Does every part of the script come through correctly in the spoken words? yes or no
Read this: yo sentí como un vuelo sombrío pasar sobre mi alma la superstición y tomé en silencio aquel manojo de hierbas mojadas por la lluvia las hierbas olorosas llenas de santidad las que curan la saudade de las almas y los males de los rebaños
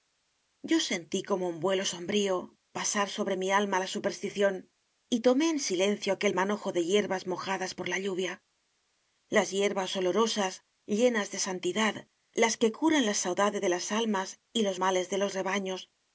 yes